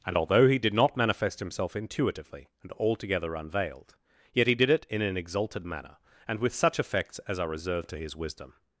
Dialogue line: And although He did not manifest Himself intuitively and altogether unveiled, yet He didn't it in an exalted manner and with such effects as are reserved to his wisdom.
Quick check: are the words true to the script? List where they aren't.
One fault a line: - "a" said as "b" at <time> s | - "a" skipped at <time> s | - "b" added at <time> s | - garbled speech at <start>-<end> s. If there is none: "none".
- "didn't" said as "did" at 4.5 s